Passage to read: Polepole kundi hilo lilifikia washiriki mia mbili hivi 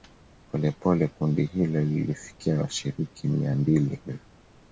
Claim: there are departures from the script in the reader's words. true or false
false